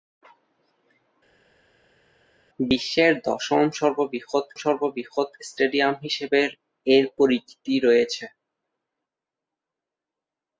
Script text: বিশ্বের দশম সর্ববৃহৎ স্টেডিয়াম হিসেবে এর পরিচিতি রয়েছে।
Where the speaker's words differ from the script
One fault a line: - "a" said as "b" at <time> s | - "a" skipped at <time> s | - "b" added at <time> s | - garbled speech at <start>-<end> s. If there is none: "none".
- "সর্ববৃহৎ" added at 4.6 s